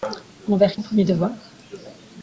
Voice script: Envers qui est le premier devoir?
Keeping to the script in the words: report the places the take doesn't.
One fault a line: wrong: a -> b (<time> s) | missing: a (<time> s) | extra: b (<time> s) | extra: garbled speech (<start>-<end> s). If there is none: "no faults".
missing: qui (0.8 s)